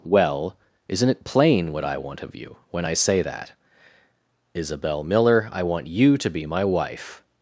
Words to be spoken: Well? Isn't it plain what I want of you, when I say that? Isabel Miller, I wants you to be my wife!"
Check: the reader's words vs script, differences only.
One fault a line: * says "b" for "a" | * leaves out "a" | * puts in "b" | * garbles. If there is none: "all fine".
* says "want" for "wants"